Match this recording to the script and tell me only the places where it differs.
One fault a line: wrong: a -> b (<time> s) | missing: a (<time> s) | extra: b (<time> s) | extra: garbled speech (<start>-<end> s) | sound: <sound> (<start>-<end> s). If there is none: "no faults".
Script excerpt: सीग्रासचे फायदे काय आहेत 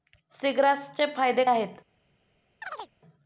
missing: काय (1.4 s)
sound: chirp (2.6-2.9 s)